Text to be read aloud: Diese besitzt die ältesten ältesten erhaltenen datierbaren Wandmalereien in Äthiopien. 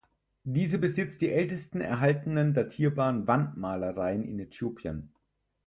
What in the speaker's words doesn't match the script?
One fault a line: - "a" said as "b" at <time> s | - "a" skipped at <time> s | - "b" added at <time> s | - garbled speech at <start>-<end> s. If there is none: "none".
- "ältesten" skipped at 1.8 s